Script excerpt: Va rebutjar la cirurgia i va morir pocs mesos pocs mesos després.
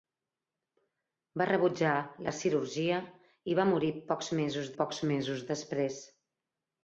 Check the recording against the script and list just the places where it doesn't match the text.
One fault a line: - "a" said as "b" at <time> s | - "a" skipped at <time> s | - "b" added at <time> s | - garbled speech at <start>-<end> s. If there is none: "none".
none